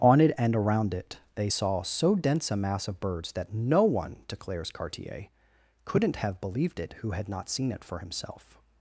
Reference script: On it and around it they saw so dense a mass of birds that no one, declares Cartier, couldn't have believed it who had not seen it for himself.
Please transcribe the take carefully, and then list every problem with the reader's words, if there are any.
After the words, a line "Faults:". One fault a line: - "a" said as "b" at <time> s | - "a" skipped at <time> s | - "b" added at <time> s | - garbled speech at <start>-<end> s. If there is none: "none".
On it and around it they saw so dense a mass of birds that no one, declares Cartier, couldn't have believed it who had not seen it for himself.
Faults:
none